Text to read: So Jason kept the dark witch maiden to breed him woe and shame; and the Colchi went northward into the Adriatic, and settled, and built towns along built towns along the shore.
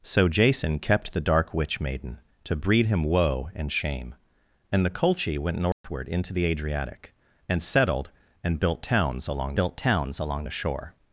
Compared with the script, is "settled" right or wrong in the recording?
right